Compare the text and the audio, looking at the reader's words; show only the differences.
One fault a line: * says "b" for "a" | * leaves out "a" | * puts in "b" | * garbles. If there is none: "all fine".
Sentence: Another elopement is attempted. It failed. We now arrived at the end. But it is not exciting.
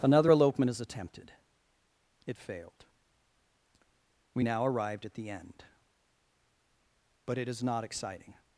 all fine